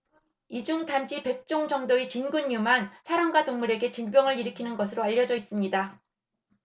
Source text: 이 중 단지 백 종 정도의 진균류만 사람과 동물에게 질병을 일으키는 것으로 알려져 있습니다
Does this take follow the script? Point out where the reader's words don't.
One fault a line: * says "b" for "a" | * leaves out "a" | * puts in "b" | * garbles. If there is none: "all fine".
all fine